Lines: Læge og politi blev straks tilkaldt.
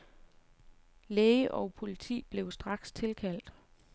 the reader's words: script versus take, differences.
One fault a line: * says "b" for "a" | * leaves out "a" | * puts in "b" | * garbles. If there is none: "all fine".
all fine